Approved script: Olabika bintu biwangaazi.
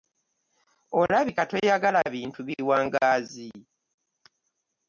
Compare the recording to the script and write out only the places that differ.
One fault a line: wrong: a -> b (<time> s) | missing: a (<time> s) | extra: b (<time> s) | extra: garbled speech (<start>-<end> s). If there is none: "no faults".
extra: toyagala (1.5 s)